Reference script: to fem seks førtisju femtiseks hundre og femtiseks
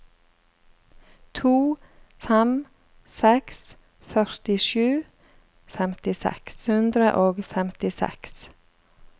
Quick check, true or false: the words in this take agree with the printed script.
true